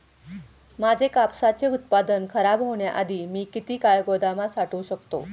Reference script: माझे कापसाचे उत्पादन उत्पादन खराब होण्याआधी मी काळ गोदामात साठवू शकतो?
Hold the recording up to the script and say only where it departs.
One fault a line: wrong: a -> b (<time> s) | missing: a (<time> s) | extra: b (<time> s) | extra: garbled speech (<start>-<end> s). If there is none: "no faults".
missing: उत्पादन (2.2 s)
extra: किती (3.5 s)